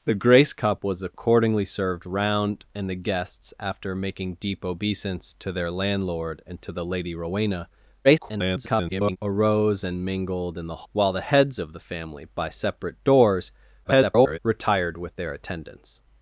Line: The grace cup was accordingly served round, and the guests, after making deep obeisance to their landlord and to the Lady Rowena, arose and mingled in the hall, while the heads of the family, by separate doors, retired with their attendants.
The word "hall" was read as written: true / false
false